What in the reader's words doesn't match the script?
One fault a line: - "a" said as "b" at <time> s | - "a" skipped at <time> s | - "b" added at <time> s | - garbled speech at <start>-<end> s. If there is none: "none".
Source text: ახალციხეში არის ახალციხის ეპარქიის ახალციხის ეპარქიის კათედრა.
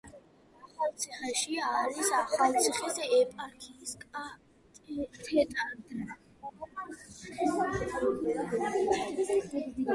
- "ახალციხის ეპარქიის" skipped at 3.9 s